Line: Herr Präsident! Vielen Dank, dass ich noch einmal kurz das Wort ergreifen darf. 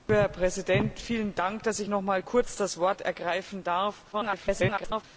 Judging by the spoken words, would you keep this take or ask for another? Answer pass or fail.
fail